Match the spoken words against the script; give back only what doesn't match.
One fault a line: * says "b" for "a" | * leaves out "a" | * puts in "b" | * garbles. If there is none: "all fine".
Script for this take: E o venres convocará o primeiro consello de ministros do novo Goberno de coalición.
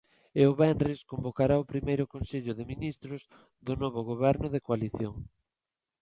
all fine